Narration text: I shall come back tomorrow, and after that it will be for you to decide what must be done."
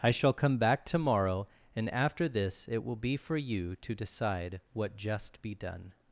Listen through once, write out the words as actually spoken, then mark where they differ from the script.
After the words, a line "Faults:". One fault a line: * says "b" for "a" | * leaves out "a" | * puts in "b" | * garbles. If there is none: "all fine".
I shall come back tomorrow, and after this it will be for you to decide what just be done."
Faults:
* says "this" for "that"
* says "just" for "must"